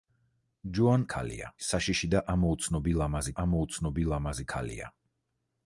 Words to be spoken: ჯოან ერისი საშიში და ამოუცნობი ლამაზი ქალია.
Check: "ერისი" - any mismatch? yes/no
yes